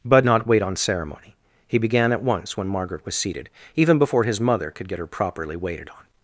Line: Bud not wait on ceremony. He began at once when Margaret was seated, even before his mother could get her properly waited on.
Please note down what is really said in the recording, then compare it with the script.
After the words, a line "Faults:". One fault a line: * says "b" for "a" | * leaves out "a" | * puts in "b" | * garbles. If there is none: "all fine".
Bud not wait on ceremony. He began at once when Margaret was seated, even before his mother could get her properly waited on.
Faults:
all fine